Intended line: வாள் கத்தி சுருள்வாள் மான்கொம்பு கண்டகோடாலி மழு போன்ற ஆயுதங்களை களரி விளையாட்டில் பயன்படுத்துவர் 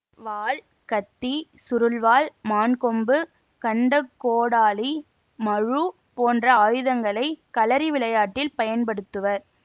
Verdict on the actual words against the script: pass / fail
pass